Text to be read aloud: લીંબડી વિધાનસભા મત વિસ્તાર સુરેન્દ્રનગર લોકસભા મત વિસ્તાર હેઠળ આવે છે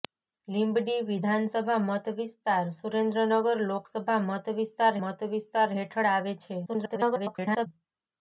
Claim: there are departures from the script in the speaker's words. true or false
true